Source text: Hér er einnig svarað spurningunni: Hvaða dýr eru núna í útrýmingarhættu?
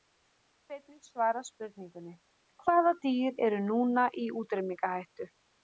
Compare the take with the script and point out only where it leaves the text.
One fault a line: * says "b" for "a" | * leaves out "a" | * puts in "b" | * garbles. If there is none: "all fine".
all fine